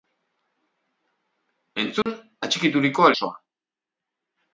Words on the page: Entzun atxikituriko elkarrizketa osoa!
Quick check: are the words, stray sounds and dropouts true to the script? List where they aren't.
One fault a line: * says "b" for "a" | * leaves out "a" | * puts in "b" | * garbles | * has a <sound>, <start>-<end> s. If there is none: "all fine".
* has a dropout, 2.0-2.1 s
* leaves out "elkarrizketa"